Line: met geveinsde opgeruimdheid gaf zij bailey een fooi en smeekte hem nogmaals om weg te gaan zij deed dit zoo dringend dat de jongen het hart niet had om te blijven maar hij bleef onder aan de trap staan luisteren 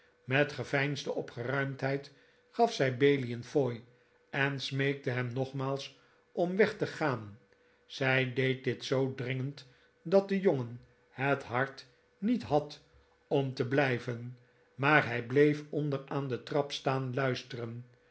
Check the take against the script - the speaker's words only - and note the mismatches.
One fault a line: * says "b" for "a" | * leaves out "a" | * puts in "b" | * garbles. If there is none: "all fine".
all fine